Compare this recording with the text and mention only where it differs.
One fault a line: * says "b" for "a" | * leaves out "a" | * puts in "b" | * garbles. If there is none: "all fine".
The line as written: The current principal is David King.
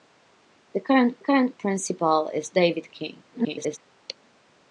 * puts in "current"
* garbles